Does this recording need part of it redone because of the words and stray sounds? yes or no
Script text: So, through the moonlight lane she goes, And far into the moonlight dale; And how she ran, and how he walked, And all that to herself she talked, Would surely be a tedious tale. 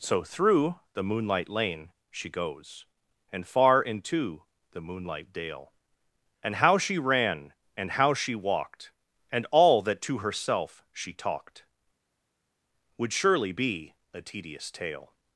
yes